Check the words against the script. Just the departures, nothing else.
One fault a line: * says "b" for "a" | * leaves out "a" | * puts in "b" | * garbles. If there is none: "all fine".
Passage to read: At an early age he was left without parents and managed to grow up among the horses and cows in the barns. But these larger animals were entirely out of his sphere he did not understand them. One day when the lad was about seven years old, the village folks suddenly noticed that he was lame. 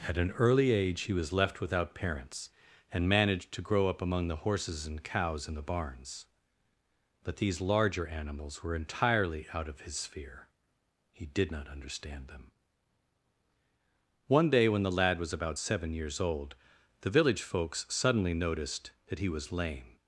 all fine